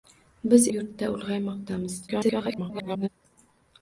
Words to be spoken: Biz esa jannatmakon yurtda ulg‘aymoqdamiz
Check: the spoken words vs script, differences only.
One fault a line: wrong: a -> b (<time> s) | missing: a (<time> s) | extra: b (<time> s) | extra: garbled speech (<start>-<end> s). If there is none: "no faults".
missing: esa jannatmakon (0.6 s)
extra: garbled speech (2.1-3.1 s)